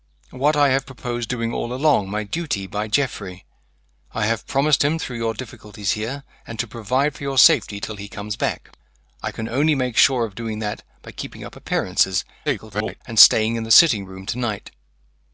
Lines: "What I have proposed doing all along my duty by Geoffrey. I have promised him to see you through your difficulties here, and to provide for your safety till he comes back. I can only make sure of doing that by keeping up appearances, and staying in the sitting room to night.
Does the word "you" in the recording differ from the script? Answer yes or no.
yes